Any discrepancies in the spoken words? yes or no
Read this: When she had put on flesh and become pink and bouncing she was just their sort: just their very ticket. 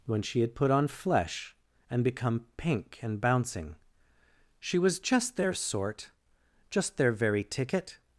no